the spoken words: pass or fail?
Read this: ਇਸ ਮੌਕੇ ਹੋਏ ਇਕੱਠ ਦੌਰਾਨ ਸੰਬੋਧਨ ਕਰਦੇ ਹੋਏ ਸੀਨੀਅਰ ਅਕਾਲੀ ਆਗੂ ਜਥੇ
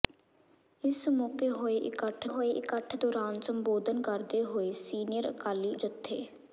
fail